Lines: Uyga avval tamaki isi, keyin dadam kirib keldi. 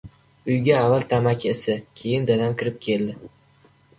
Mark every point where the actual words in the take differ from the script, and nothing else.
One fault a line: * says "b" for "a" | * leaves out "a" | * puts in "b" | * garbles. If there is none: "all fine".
all fine